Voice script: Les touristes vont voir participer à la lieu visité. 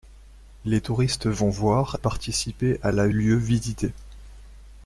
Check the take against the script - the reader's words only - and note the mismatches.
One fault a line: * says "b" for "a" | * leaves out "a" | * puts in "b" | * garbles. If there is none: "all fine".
all fine